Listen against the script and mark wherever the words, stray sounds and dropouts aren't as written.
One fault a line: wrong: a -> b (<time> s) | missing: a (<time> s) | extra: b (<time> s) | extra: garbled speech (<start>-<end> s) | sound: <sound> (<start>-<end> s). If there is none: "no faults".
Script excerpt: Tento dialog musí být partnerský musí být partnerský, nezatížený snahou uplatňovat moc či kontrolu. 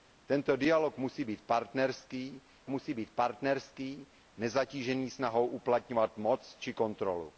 no faults